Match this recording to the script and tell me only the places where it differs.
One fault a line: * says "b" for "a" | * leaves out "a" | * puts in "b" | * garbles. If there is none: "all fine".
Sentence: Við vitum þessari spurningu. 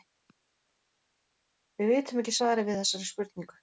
* puts in "ekki svarið við"